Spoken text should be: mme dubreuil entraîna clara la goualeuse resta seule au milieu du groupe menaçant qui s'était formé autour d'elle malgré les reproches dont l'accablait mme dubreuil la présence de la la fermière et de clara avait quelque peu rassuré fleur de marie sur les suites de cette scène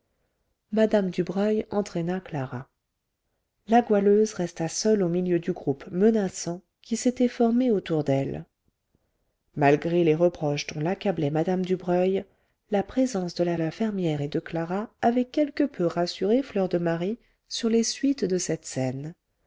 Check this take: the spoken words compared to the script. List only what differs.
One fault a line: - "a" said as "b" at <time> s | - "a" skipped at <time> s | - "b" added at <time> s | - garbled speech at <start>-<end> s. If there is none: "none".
none